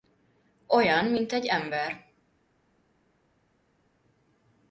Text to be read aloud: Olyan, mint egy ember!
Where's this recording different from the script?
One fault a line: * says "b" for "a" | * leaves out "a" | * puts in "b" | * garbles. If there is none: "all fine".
all fine